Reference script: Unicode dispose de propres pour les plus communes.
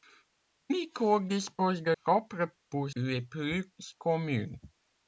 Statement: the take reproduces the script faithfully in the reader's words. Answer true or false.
true